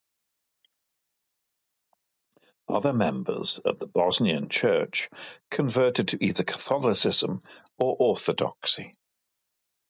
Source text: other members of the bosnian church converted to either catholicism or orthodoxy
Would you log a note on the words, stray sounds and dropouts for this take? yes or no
no